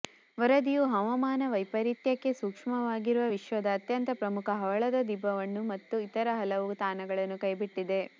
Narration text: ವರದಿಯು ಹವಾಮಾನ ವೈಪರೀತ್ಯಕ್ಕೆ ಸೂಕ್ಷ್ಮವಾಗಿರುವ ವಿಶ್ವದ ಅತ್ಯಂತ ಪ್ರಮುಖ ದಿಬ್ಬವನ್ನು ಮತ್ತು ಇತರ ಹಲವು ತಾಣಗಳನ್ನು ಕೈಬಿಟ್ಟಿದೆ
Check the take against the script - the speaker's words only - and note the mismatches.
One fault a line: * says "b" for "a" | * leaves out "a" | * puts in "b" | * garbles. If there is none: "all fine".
* puts in "ಹವಳದ"